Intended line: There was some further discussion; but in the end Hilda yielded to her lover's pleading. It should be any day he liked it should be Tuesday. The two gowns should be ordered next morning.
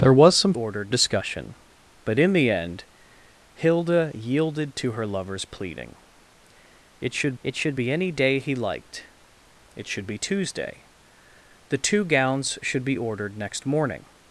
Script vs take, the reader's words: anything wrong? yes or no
yes